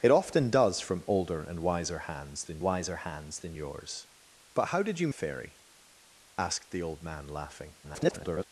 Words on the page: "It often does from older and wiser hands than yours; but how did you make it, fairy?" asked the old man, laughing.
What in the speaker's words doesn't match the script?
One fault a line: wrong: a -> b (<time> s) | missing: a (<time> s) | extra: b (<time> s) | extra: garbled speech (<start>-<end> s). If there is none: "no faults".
extra: wiser hands than (2.6 s)
missing: make it (5.1 s)
extra: garbled speech (7.8-8.4 s)